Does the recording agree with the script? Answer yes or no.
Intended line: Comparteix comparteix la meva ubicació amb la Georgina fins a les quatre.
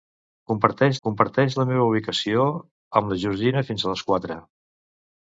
yes